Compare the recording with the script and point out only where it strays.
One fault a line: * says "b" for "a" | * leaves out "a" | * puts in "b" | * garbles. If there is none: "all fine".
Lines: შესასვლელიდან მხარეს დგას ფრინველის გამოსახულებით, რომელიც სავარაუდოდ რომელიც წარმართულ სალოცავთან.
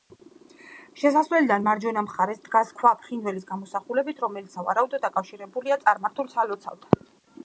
* puts in "მარჯვენა"
* puts in "ქვა"
* says "დაკავშირებულია" for "რომელიც"